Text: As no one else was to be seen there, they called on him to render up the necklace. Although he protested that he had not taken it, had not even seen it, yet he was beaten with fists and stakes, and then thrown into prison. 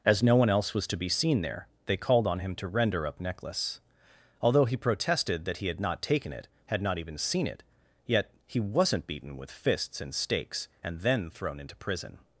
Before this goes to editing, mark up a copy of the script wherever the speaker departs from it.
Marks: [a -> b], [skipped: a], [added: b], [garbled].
As no one else was to be seen there, they called on him to render up [skipped: the] necklace. Although he protested that he had not taken it, had not even seen it, yet he [was -> wasn't] beaten with fists and stakes, and then thrown into prison.